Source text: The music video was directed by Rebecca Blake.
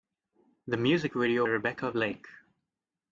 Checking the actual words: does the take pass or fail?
fail